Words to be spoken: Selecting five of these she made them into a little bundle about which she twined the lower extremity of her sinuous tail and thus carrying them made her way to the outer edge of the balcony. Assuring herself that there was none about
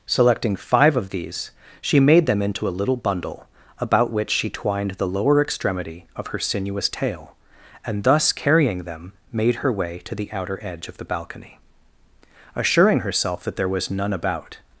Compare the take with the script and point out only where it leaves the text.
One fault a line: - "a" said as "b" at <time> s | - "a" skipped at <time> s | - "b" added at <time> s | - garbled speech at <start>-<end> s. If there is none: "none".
none